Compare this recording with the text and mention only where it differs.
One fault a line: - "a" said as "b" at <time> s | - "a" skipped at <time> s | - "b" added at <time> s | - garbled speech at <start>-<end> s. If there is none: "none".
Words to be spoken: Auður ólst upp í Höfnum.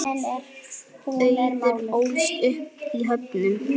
none